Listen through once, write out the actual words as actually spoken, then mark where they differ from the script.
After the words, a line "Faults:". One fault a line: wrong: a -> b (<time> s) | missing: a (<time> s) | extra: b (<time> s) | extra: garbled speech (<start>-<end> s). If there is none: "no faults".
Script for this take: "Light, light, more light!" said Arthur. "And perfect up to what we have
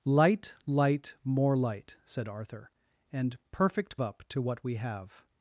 "Light, light, more light!" said Arthur. "And perfect up to what we have
Faults:
no faults